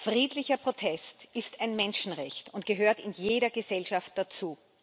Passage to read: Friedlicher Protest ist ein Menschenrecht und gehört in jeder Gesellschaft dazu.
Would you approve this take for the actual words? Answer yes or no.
yes